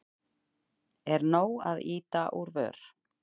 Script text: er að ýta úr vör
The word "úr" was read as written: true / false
true